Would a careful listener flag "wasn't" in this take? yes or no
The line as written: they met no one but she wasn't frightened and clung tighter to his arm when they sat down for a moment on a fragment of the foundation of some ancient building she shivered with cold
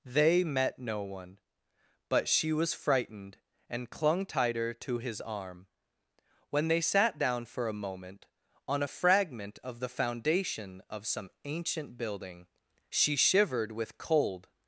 yes